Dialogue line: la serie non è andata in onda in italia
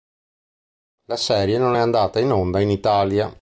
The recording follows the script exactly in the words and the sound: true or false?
true